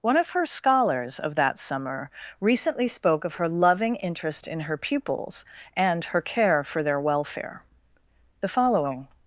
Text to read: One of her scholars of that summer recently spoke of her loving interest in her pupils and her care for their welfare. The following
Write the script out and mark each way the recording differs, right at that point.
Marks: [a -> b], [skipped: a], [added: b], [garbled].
One of her scholars of that summer recently spoke of her loving interest in her pupils and her care for their welfare. The following